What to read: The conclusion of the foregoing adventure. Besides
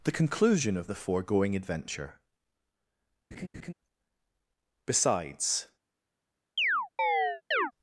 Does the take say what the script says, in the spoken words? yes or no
yes